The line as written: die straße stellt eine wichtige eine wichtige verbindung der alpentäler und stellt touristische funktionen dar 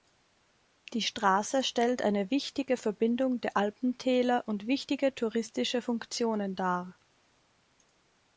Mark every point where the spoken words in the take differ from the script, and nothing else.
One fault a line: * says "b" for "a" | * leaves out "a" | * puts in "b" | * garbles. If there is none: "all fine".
* leaves out "eine wichtige"
* says "wichtige" for "stellt"